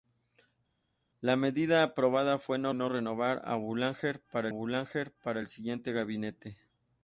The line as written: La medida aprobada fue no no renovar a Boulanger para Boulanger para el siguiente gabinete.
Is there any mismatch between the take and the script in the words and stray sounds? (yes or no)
no